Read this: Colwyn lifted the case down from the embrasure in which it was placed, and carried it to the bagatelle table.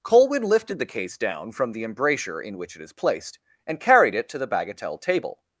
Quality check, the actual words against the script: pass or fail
fail